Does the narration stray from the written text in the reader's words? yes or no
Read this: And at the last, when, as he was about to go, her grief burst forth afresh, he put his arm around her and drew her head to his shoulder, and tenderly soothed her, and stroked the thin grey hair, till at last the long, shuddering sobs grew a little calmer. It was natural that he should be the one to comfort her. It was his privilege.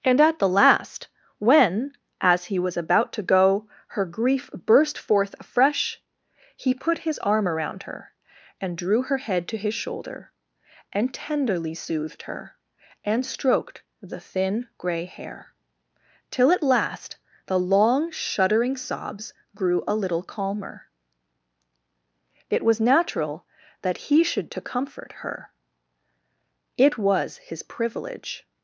yes